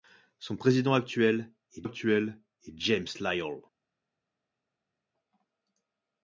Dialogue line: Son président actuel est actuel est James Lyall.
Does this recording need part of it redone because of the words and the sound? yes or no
no